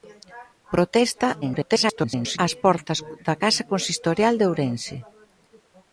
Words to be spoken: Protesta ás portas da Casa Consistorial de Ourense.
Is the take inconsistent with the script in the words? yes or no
yes